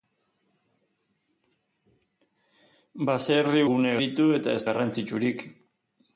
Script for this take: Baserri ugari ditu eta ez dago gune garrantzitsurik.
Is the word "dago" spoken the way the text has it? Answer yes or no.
no